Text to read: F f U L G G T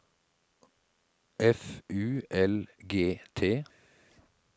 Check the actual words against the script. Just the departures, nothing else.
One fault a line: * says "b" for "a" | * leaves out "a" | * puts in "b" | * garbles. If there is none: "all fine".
* leaves out "f"
* leaves out "G"